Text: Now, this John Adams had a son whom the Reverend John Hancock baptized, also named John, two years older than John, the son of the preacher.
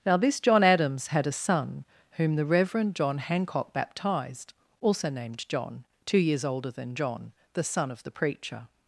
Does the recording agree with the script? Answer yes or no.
yes